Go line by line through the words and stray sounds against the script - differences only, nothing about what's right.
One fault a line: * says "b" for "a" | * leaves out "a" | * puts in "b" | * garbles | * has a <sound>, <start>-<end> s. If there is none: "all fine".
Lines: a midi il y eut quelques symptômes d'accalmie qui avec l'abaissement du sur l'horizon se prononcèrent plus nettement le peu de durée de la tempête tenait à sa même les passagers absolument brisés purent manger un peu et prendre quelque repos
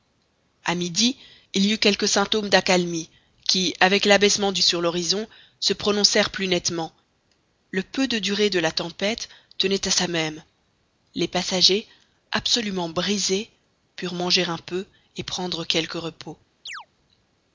* has a chirp, 16.7-16.9 s